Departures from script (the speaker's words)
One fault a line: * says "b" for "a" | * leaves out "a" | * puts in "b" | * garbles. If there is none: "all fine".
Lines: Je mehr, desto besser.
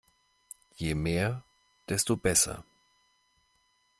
all fine